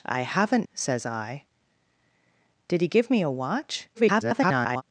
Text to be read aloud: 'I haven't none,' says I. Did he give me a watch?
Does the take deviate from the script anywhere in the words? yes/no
yes